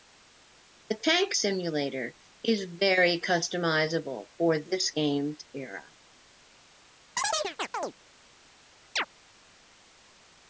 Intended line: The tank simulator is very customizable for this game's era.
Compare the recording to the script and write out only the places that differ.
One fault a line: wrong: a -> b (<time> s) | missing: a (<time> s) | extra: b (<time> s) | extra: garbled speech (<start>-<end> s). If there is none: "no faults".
no faults